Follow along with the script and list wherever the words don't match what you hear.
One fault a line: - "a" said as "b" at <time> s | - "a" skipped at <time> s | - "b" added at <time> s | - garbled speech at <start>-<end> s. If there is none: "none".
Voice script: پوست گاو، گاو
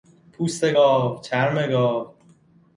- "چرم" added at 1.2 s